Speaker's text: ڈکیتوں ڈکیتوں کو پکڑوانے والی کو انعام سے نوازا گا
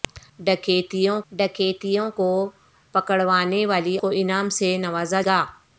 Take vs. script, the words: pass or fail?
pass